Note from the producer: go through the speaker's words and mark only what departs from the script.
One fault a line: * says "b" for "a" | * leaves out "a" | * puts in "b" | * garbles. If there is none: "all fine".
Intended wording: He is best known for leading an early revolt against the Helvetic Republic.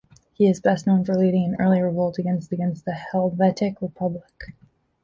* puts in "against"